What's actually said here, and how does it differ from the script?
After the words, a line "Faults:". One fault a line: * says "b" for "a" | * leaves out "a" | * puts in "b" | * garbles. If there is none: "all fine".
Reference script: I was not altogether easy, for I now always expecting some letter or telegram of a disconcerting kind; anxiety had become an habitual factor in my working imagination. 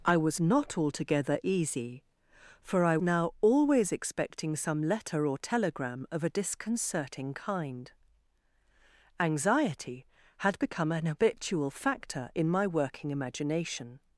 I was not altogether easy, for I now always expecting some letter or telegram of a disconcerting kind; anxiety had become an habitual factor in my working imagination.
Faults:
all fine